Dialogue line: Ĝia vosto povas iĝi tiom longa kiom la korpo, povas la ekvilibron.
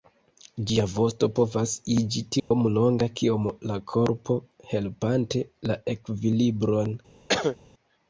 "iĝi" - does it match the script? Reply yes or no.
yes